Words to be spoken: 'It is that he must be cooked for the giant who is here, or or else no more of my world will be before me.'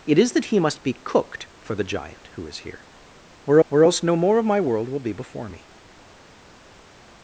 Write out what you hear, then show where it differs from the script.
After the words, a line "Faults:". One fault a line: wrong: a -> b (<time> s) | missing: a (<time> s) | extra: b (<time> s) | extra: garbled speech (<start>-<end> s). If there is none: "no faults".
'It is that he must be cooked for the giant who is here, or or else no more of my world will be before me.'
Faults:
no faults